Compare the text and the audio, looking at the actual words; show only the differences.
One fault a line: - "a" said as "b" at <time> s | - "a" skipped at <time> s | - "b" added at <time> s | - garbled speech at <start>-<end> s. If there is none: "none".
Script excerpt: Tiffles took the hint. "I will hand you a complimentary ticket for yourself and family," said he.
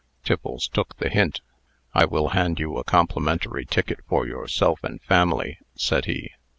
none